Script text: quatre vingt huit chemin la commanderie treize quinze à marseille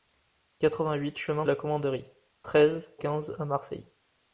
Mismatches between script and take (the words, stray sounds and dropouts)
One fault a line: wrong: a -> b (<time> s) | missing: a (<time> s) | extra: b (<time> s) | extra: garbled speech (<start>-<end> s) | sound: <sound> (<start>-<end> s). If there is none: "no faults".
no faults